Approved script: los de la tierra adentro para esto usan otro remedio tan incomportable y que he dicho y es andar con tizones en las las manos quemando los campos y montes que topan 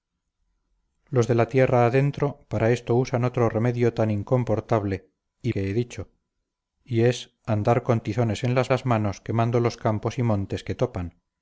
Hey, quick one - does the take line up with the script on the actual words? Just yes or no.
yes